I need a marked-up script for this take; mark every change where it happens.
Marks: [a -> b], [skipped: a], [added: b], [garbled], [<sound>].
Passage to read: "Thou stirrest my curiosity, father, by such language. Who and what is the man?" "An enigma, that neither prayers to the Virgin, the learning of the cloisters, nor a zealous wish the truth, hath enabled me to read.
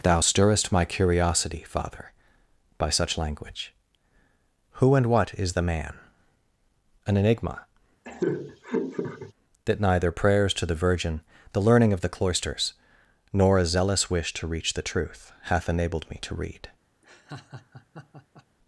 "Thou stirrest my curiosity, father, by such language. Who and what is the man?" "An enigma, [laugh] that neither prayers to the Virgin, the learning of the cloisters, nor a zealous wish [added: to reach] the truth, hath enabled me to read. [laugh]